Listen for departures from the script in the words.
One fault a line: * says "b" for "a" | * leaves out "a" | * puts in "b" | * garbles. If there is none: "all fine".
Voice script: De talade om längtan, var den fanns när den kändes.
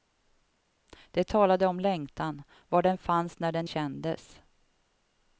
all fine